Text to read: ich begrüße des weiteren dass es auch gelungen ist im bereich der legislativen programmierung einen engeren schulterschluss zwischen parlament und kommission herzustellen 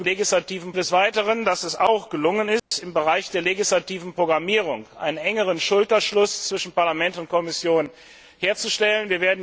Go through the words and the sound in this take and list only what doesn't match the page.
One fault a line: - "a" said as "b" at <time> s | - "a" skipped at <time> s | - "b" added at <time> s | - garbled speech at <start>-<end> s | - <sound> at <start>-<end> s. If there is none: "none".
- "begrüße" said as "legislativen" at 0.0 s
- dropout at 2.6-2.7 s